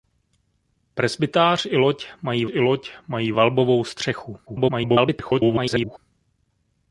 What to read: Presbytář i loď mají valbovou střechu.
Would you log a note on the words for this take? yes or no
yes